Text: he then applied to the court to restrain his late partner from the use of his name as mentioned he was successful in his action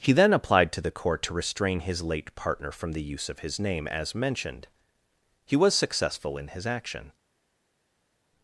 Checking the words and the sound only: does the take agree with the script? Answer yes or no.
yes